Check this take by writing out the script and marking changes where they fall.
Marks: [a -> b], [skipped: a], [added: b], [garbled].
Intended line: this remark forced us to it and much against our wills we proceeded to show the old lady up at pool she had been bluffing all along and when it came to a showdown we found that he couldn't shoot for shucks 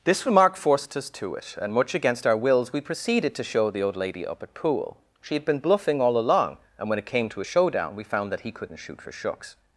this remark forced us to it and much against our wills we proceeded to show the old lady up at pool she had been bluffing all along and when it came to a showdown we found that he couldn't shoot for shucks